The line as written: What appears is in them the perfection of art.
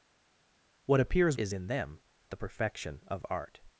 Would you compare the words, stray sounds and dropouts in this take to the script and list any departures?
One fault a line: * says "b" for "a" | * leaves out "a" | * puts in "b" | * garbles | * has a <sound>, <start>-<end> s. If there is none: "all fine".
all fine